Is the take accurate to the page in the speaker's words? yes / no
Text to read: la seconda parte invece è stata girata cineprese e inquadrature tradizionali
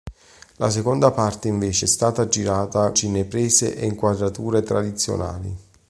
yes